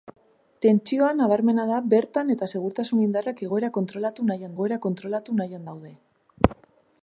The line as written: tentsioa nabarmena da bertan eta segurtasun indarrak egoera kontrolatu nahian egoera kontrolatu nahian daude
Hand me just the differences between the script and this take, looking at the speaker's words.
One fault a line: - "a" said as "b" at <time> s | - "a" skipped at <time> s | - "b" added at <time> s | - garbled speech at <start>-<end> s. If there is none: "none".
none